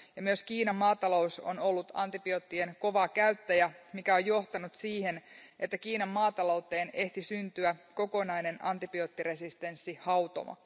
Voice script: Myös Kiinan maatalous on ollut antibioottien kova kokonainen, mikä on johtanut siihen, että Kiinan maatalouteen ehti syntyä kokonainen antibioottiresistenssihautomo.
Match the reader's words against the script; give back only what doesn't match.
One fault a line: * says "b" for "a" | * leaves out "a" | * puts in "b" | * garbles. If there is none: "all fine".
* says "käyttäjä" for "kokonainen"